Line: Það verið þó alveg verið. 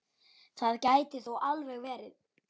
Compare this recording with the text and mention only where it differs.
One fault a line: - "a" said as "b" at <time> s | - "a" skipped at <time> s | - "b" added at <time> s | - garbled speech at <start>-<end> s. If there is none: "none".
- "verið" said as "gæti" at 0.9 s